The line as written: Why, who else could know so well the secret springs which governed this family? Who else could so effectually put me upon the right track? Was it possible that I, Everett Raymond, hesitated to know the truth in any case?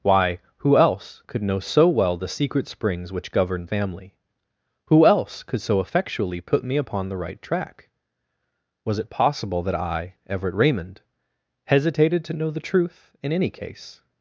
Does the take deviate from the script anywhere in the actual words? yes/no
yes